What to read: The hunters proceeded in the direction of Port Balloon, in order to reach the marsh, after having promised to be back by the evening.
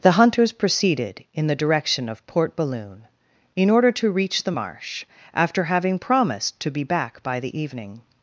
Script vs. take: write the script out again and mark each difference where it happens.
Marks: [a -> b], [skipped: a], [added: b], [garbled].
The hunters proceeded in the direction of Port Balloon, in order to reach the marsh, after having promised to be back by the evening.